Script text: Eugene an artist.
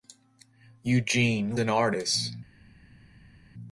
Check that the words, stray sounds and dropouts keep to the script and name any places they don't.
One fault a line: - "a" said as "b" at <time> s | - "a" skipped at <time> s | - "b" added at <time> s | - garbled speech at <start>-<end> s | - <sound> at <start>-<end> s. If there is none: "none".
none